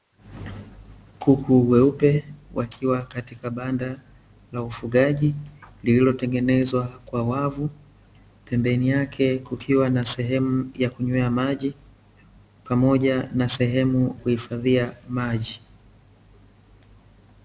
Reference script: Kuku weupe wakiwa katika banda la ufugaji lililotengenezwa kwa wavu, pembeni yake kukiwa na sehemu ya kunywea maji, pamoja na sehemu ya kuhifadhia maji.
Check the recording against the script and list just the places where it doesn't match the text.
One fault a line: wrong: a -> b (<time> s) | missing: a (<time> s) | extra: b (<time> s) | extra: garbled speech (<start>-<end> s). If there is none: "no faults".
missing: ya (14.2 s)